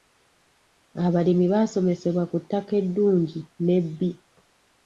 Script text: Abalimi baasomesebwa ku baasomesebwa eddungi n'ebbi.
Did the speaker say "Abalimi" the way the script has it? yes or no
yes